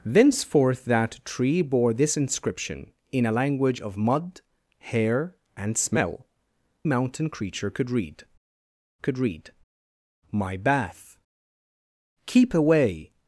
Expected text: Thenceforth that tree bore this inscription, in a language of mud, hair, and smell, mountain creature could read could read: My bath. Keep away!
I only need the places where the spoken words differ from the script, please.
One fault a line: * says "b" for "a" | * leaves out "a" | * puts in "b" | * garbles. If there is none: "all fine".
all fine